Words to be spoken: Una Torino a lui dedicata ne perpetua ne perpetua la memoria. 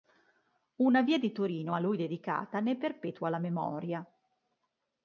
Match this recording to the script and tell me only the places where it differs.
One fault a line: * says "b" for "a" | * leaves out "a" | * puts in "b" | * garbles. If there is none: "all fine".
* puts in "via di"
* leaves out "ne perpetua"